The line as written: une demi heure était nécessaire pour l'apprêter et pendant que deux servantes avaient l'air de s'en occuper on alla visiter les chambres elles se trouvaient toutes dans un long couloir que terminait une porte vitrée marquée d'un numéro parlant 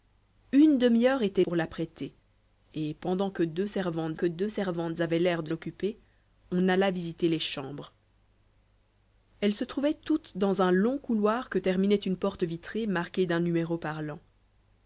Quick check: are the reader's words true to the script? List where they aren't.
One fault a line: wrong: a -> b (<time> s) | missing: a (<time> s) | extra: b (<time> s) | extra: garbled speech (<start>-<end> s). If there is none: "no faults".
missing: nécessaire (1.4 s)
extra: que deux servantes (4.1 s)
missing: s'en (5.5 s)